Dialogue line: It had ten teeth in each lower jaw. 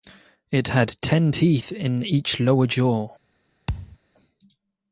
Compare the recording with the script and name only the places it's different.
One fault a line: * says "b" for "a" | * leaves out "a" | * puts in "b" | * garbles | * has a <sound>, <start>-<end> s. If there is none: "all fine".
* has a thud, 3.7-4.0 s